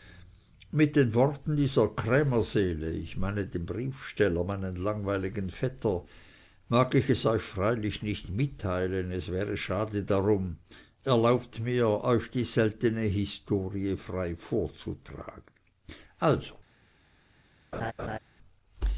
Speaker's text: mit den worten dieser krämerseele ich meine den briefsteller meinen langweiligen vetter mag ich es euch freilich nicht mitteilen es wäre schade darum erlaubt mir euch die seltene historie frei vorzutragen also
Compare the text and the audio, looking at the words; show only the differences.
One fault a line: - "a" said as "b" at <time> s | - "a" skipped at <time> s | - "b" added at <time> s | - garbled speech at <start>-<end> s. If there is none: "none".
none